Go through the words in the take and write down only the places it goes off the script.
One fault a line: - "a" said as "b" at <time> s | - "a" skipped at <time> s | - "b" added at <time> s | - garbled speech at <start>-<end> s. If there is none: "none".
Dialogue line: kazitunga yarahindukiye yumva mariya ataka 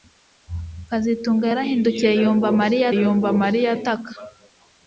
- "yumva mariya" added at 3.0 s